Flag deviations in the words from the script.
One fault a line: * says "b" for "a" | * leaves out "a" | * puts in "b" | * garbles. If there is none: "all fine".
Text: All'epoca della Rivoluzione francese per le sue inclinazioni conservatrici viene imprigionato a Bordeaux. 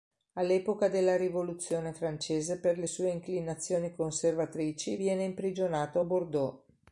all fine